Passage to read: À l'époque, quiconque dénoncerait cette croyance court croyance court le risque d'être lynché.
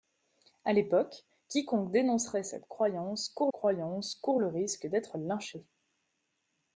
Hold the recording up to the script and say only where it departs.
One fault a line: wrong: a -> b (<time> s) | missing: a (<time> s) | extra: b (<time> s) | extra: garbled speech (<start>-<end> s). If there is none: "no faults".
no faults